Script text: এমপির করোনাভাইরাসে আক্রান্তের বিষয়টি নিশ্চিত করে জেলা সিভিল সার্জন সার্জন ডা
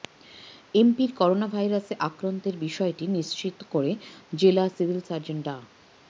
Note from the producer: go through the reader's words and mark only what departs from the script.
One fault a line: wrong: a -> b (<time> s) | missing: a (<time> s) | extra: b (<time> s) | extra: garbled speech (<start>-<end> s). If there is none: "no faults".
missing: সার্জন (5.4 s)